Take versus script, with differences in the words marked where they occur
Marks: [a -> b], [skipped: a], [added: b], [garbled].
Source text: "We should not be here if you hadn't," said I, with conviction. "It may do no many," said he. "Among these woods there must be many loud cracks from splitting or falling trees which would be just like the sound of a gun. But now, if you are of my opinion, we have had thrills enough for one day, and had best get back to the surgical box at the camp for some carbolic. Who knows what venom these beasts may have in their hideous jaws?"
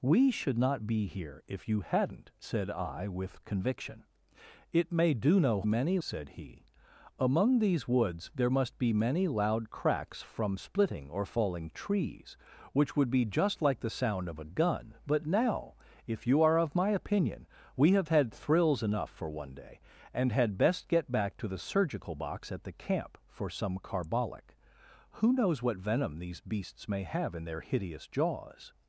"We should not be here if you hadn't," said I, with conviction. "It may do no many," said he. "Among these woods there must be many loud cracks from splitting or falling trees which would be just like the sound of a gun. But now, if you are of my opinion, we have had thrills enough for one day, and had best get back to the surgical box at the camp for some carbolic. Who knows what venom these beasts may have in their hideous jaws?"